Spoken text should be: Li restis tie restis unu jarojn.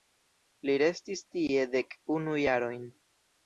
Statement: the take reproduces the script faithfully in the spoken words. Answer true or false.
false